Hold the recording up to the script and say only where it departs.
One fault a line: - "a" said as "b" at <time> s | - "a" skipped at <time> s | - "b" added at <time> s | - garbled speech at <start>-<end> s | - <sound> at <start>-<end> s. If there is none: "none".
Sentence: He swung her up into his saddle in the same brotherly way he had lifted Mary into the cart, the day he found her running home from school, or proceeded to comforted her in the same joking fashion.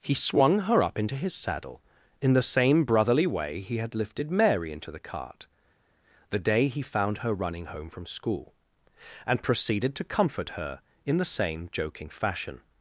- "or" said as "and" at 9.3 s
- "comforted" said as "comfort" at 10.0 s